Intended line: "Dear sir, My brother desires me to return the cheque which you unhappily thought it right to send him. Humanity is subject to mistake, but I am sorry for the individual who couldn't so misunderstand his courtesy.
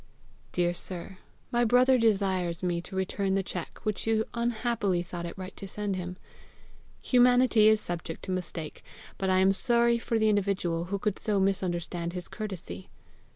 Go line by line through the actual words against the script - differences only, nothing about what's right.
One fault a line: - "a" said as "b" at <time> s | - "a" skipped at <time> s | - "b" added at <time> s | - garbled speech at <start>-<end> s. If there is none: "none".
- "couldn't" said as "could" at 11.0 s